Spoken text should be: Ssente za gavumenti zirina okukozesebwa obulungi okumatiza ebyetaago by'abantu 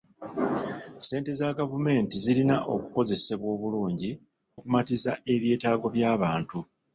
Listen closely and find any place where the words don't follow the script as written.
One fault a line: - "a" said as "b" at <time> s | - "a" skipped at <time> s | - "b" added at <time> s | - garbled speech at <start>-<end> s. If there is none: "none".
none